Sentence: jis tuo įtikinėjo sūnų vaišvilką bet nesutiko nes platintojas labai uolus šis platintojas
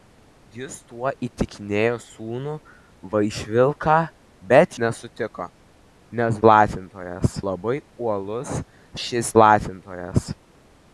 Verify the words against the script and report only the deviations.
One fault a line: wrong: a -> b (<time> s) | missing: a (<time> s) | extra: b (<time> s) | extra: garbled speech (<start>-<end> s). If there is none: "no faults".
no faults